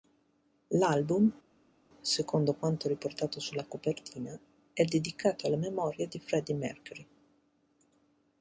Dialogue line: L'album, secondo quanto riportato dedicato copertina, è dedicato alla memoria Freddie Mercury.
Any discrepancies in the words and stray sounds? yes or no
yes